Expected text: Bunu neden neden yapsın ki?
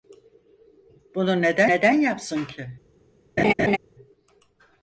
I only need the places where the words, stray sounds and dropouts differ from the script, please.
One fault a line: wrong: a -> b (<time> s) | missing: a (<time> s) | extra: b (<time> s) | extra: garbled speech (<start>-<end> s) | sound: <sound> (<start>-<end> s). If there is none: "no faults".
sound: laugh (3.4-3.8 s)